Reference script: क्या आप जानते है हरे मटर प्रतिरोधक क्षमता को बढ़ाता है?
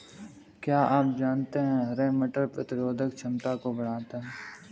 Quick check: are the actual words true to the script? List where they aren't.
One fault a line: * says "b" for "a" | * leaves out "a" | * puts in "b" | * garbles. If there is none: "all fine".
all fine